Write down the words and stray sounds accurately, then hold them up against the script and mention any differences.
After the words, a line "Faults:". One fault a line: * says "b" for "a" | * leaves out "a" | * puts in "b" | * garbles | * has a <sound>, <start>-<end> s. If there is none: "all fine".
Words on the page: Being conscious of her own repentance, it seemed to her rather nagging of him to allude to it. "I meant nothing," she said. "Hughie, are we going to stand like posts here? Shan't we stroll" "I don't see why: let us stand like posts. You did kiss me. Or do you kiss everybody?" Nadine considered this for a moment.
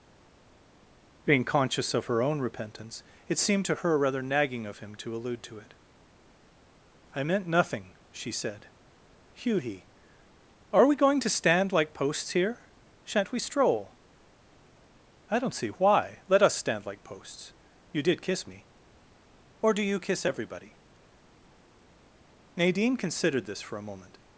Being conscious of her own repentance, it seemed to her rather nagging of him to allude to it. "I meant nothing," she said. "Hughie, are we going to stand like posts here? Shan't we stroll" "I don't see why: let us stand like posts. You did kiss me. Or do you kiss everybody?" Nadine considered this for a moment.
Faults:
all fine